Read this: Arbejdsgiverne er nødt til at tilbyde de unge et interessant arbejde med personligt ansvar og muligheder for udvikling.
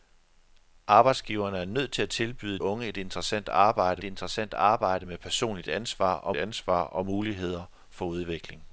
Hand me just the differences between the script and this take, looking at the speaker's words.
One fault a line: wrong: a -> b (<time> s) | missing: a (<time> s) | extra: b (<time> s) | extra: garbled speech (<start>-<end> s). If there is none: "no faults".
missing: de (2.6 s)
extra: interessant arbejde (4.0 s)
extra: ansvar og (6.3 s)